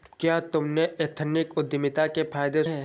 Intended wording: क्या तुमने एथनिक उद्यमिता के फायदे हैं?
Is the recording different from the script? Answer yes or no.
no